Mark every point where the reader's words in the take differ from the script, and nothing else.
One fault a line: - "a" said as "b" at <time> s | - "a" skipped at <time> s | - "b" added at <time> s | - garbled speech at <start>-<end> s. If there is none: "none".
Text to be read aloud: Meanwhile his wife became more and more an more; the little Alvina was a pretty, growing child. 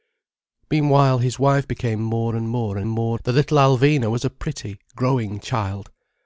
none